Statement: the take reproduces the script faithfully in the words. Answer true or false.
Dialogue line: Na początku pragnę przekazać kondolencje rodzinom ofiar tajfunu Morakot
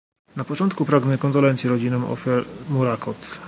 false